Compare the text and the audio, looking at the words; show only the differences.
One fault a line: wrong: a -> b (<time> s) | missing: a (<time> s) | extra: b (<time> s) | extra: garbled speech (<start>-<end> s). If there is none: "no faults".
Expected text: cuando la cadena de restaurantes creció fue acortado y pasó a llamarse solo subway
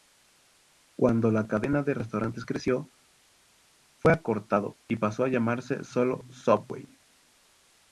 no faults